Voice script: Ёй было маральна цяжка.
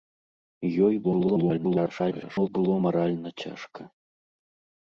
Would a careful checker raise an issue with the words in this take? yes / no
yes